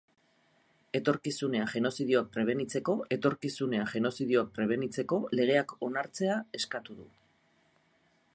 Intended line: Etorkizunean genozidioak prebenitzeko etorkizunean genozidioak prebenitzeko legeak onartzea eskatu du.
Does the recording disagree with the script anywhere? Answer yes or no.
no